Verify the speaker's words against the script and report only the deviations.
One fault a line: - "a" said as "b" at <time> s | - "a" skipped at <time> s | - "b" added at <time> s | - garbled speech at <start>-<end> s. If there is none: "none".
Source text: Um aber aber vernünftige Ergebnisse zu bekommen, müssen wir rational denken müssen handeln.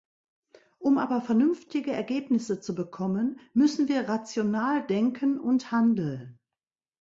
- "aber" skipped at 1.2 s
- "müssen" said as "und" at 5.4 s